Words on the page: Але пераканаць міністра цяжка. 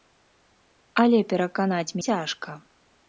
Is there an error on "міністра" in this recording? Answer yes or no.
yes